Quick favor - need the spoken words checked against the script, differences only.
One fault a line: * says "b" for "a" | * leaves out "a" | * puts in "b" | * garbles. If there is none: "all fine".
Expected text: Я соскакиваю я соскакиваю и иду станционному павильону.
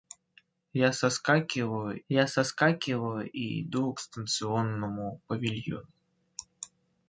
all fine